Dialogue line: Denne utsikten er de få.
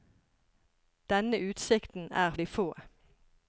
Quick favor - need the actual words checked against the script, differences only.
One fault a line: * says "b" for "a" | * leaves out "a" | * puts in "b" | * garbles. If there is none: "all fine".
all fine